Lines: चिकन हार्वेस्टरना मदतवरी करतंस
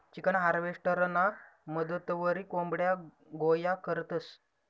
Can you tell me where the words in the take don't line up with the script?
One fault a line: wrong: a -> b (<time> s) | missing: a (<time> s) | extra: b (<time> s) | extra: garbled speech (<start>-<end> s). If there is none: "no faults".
extra: कोंबड्या गोया (2.5 s)